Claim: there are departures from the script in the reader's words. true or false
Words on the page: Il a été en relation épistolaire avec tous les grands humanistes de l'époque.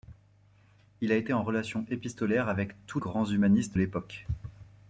true